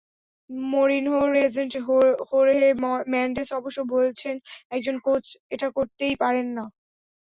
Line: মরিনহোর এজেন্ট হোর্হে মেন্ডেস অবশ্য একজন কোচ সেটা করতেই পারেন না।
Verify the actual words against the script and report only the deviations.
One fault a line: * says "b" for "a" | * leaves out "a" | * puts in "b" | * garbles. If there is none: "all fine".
* puts in "বলছেন"
* says "এটা" for "সেটা"